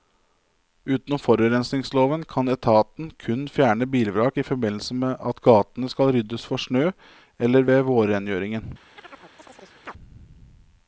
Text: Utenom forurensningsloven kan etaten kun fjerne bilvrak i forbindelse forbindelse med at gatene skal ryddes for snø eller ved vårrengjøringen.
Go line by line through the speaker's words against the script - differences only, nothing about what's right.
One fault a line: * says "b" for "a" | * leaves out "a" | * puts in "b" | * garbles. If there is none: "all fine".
* leaves out "forbindelse"